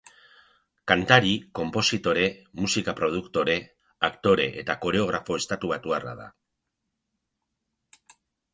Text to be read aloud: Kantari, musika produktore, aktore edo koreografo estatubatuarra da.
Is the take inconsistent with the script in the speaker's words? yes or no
yes